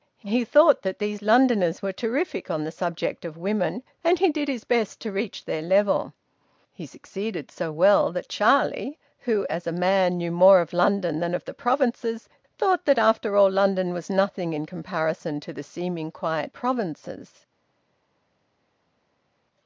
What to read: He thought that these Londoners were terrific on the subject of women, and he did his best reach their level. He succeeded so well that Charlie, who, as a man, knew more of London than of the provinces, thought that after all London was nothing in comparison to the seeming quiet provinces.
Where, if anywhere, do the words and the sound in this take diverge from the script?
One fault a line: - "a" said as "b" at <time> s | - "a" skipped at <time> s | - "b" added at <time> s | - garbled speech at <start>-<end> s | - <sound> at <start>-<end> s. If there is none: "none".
- "to" added at 5.0 s